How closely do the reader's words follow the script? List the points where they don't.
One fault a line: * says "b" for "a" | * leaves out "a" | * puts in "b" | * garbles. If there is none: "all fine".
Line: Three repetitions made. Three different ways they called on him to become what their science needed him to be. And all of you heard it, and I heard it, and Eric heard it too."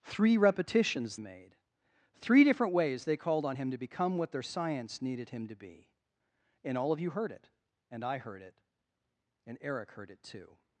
all fine